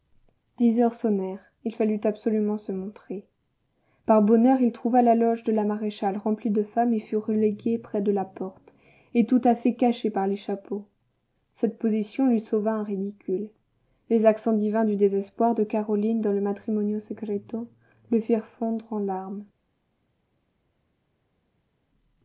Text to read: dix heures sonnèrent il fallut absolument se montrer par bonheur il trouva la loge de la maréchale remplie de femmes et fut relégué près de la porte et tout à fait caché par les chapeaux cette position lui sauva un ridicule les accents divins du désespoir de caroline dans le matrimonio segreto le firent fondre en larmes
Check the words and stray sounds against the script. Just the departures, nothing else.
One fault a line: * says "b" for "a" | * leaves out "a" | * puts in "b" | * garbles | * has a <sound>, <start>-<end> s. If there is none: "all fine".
all fine